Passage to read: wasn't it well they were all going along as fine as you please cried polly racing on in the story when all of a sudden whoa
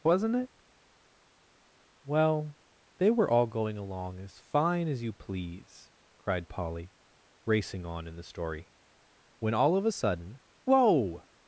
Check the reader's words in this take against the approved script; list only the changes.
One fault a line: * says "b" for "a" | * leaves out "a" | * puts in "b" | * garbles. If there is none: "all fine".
all fine